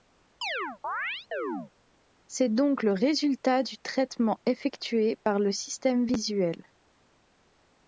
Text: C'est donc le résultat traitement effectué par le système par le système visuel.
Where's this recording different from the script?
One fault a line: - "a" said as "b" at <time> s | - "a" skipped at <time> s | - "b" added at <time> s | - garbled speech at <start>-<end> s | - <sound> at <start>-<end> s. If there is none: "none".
- chirp at 0.4-1.7 s
- "du" added at 3.6 s
- "par le système" skipped at 6.1 s